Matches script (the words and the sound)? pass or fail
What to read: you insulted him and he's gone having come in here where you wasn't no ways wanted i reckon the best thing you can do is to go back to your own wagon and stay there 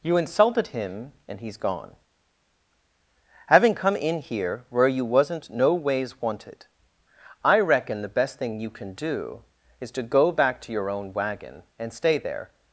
pass